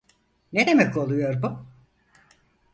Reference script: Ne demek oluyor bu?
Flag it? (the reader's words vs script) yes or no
no